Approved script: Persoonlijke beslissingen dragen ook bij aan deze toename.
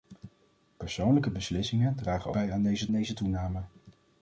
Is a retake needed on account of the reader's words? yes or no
yes